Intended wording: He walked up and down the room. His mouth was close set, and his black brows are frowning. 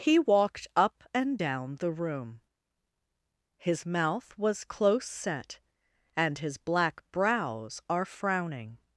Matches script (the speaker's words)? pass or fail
pass